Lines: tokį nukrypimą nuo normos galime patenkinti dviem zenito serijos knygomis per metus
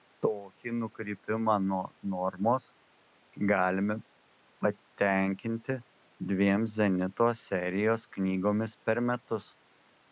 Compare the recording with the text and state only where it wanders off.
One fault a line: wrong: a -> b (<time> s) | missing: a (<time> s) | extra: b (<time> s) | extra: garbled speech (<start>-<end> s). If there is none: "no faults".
no faults